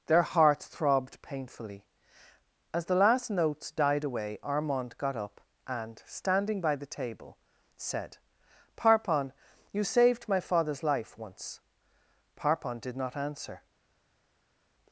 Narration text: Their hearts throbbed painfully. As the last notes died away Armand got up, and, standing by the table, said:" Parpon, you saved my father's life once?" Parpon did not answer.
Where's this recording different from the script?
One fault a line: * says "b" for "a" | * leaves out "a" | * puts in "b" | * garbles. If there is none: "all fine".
all fine